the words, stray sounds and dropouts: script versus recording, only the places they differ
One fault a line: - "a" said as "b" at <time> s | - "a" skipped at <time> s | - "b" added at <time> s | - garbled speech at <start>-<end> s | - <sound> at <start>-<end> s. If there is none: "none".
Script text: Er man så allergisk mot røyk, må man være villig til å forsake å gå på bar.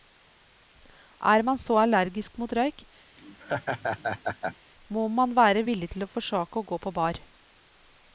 - laugh at 3.2-4.6 s